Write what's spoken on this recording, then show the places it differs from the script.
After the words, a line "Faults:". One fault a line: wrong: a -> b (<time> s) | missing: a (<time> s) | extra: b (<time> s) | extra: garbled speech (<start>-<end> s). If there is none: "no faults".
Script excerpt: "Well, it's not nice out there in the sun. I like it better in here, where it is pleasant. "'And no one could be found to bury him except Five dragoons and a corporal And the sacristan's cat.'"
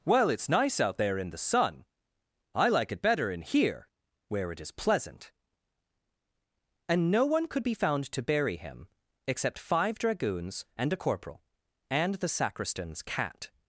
"Well, it's nice out there in the sun. I like it better in here, where it is pleasant. "'And no one could be found to bury him except Five dragoons and a corporal And the sacristan's cat.'"
Faults:
missing: not (0.5 s)